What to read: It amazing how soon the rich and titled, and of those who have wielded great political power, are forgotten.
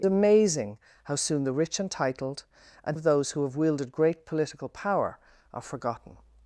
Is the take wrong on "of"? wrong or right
right